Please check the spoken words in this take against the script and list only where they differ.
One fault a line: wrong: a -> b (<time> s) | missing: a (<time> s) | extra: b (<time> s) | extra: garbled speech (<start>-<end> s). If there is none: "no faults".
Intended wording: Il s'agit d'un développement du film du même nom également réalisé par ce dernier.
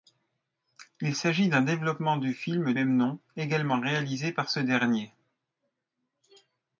missing: du (2.7 s)